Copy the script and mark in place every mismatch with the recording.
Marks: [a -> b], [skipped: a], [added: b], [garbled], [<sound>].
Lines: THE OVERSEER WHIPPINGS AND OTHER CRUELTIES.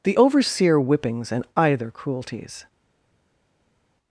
THE OVERSEER WHIPPINGS AND [OTHER -> Either] CRUELTIES.